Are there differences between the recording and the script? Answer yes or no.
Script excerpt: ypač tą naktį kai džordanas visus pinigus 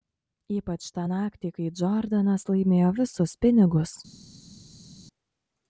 yes